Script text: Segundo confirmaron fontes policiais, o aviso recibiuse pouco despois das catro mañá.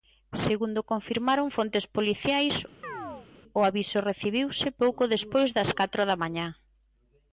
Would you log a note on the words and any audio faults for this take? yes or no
yes